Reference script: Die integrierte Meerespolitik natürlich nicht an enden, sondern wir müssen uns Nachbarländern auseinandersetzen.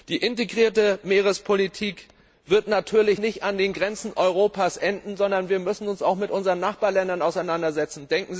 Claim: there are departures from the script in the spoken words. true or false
true